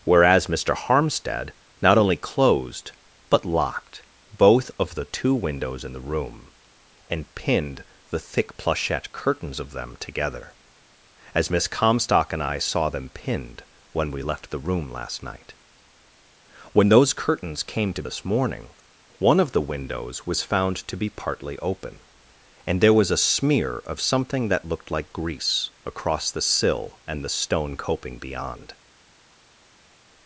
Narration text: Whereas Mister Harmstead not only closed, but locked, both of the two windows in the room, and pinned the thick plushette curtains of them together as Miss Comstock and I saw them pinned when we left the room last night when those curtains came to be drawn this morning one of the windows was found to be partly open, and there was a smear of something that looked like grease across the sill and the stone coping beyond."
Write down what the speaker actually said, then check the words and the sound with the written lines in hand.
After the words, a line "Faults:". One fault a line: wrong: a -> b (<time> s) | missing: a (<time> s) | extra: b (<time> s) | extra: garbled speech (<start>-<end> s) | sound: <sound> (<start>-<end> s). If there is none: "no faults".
Whereas Mister Harmstead not only closed, but locked, both of the two windows in the room, and pinned the thick plushette curtains of them together as Miss Comstock and I saw them pinned when we left the room last night when those curtains came to this morning one of the windows was found to be partly open, and there was a smear of something that looked like grease across the sill and the stone coping beyond."
Faults:
missing: be drawn (18.0 s)